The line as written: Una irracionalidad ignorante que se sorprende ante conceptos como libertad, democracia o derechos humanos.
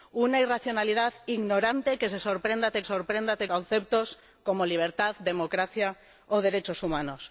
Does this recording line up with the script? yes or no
no